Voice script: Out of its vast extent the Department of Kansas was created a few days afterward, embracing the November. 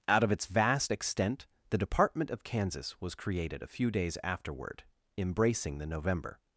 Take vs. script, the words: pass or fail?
pass